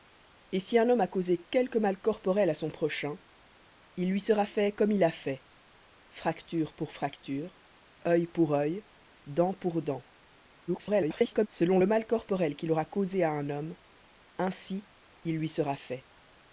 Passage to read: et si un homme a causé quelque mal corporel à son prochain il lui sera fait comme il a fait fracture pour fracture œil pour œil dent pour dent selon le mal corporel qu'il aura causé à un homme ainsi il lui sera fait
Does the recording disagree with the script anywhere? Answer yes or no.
yes